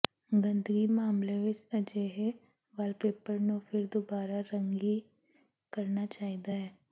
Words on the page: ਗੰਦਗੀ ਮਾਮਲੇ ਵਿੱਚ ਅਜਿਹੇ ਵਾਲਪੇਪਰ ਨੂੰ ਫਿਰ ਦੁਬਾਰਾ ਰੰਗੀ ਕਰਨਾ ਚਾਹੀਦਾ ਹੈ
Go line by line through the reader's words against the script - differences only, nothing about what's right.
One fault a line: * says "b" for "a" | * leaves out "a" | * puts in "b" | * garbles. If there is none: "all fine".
all fine